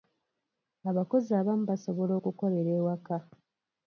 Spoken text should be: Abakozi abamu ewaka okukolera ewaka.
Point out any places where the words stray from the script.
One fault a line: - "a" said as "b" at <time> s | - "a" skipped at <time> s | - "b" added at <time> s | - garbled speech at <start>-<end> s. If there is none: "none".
- "ewaka" said as "basobola" at 1.7 s